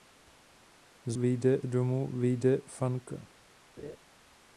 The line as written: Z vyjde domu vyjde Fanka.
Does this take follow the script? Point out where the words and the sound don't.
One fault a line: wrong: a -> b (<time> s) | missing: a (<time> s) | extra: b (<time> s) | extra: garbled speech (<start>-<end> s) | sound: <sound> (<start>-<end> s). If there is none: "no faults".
sound: laugh (3.8-4.0 s)